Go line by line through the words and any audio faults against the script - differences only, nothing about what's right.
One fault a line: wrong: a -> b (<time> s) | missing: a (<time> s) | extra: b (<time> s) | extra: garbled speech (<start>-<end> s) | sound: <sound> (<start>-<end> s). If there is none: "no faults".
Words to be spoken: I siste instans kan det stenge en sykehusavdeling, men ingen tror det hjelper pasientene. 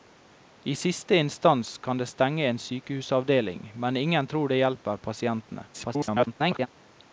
extra: garbled speech (5.7-6.7 s)